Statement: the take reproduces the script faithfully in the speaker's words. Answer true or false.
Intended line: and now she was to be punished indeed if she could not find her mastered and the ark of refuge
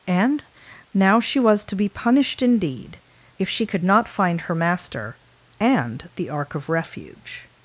false